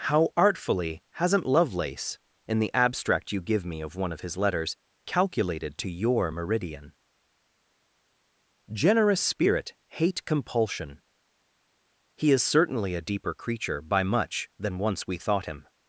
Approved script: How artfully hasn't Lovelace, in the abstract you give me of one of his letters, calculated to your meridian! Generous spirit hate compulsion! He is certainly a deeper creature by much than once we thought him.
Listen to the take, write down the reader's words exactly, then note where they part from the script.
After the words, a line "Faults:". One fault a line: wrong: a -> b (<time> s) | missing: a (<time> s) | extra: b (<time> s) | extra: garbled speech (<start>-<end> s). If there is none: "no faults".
How artfully hasn't Lovelace, in the abstract you give me of one of his letters, calculated to your meridian! Generous spirit hate compulsion! He is certainly a deeper creature by much than once we thought him.
Faults:
no faults